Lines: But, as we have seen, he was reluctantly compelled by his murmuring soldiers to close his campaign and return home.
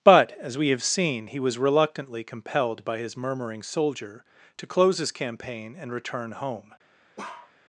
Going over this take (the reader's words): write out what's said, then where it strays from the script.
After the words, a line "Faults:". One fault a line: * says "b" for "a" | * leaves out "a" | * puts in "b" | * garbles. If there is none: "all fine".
But, as we have seen, he was reluctantly compelled by his murmuring soldier to close his campaign and return home.
Faults:
* says "soldier" for "soldiers"